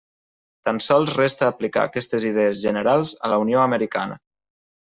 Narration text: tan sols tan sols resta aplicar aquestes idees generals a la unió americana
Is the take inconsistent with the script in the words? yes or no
yes